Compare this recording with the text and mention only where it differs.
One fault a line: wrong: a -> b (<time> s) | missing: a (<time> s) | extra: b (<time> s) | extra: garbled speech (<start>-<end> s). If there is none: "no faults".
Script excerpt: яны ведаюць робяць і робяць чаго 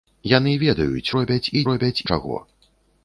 no faults